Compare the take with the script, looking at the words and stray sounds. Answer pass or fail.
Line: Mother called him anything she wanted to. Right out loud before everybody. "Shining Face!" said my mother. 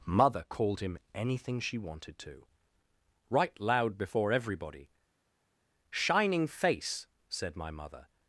fail